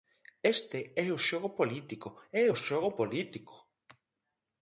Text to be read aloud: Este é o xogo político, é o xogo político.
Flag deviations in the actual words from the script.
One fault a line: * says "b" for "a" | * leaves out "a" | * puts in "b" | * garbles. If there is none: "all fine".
all fine